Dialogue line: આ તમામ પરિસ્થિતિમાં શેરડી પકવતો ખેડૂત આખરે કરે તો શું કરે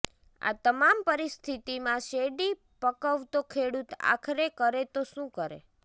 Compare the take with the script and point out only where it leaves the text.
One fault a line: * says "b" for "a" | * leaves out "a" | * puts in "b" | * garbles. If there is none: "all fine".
all fine